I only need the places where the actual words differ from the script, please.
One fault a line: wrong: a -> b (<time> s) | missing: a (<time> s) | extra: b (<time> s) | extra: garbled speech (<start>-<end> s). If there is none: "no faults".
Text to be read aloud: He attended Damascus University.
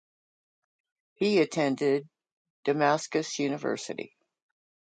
no faults